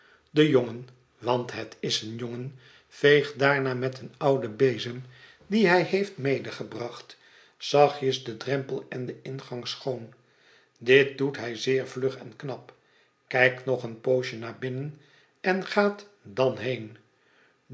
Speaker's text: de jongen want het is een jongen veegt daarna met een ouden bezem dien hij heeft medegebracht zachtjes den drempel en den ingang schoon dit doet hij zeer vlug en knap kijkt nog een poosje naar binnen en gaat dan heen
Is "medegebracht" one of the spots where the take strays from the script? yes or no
no